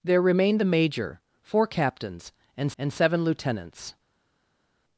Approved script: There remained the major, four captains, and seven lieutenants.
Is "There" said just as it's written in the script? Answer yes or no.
yes